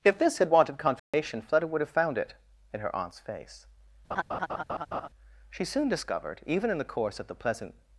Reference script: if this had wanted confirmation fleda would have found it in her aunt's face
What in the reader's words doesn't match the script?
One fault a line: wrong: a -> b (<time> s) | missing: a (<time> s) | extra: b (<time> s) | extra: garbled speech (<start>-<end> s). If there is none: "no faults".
extra: she soon discovered even in the course of the pleasant (5.5 s)